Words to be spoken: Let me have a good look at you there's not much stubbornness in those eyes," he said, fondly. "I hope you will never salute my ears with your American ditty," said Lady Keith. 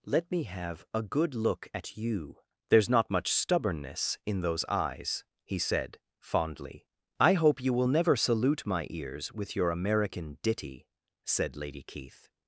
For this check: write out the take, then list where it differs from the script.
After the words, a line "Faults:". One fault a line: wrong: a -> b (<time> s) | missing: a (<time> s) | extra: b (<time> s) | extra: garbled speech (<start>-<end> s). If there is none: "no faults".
Let me have a good look at you there's not much stubbornness in those eyes," he said, fondly. "I hope you will never salute my ears with your American ditty," said Lady Keith.
Faults:
no faults